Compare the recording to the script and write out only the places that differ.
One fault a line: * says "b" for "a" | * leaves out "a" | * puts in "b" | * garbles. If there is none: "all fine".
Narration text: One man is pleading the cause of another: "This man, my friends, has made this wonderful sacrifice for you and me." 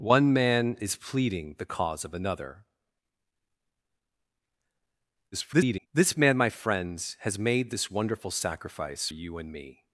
* garbles
* leaves out "for"